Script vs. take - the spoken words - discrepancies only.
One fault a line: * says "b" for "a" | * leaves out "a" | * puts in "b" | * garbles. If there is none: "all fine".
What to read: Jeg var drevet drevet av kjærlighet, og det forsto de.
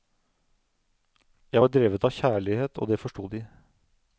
* leaves out "drevet"